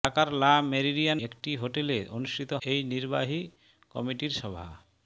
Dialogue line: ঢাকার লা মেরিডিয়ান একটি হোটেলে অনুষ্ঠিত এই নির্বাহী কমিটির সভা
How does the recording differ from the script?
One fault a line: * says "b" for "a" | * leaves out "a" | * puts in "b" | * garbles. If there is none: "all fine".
all fine